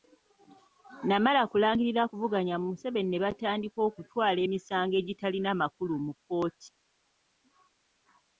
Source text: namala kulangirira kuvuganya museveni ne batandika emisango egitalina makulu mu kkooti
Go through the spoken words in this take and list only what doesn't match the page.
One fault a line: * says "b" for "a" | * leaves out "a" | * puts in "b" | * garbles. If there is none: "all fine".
* puts in "okutwala"